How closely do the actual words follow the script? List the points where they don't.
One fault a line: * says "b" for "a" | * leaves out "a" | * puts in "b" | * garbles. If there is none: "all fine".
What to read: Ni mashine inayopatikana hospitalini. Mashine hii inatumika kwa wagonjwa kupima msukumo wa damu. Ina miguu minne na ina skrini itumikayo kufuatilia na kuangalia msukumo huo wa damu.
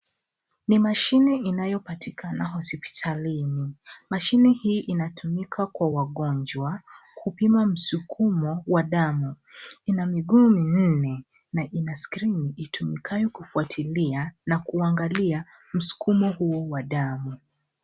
all fine